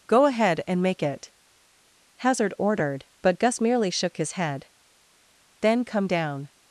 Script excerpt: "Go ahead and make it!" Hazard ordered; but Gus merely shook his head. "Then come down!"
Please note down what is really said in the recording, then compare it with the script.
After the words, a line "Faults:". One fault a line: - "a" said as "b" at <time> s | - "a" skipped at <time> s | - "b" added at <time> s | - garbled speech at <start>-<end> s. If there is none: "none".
"Go ahead and make it!" Hazard ordered; but Gus merely shook his head. "Then come down!"
Faults:
none